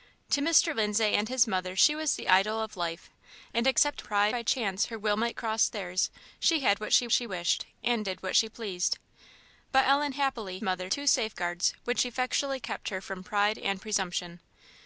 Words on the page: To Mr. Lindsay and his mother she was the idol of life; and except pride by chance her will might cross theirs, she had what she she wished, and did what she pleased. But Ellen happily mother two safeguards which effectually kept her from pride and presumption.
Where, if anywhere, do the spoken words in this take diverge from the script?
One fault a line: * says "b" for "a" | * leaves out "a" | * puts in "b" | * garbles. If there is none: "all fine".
all fine